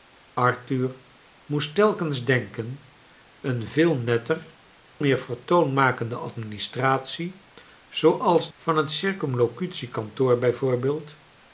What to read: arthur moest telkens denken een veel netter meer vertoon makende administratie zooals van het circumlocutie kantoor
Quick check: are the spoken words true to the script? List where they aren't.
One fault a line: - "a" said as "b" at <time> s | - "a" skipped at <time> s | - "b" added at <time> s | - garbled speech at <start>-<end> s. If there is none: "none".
none